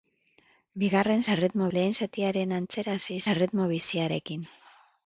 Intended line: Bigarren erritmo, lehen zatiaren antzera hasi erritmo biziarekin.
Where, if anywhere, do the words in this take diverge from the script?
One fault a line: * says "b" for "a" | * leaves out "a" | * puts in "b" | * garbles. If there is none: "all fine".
all fine